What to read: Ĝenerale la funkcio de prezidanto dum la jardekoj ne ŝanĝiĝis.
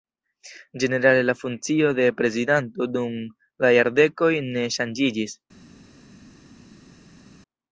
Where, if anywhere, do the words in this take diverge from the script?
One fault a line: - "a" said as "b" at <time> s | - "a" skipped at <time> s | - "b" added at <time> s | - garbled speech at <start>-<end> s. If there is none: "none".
none